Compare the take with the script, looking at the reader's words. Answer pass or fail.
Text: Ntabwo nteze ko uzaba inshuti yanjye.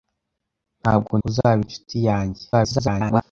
fail